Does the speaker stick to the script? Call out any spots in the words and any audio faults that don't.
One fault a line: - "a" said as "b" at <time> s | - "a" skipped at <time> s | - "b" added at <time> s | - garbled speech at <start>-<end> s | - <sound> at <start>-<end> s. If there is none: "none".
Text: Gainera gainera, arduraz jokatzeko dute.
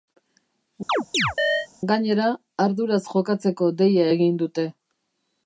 - chirp at 0.9-1.7 s
- "gainera" skipped at 2.3 s
- "deia egin" added at 3.8 s